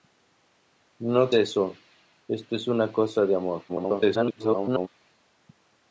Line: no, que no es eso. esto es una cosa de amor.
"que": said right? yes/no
no